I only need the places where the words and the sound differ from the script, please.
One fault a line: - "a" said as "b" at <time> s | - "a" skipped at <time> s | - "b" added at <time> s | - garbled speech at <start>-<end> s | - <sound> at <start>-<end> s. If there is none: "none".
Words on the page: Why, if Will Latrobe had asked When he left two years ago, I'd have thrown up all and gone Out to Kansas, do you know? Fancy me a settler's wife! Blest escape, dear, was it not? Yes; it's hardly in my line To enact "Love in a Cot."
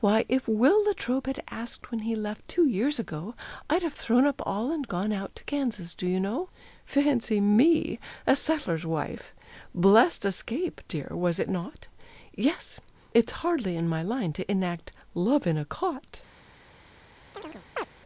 - chirp at 17.3-17.9 s